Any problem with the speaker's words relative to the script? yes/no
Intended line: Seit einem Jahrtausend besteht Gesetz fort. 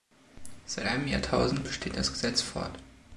yes